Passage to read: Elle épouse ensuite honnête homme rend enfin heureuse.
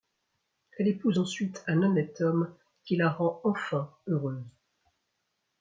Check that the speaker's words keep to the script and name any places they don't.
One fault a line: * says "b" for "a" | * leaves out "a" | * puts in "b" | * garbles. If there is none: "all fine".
* puts in "un"
* puts in "qui la"